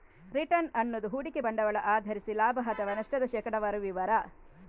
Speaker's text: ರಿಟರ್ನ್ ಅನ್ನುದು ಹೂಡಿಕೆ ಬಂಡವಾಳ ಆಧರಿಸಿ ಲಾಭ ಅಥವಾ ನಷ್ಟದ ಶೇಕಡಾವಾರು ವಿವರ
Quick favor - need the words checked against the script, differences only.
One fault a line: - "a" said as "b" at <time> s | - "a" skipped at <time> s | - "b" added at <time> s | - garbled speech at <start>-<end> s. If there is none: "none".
none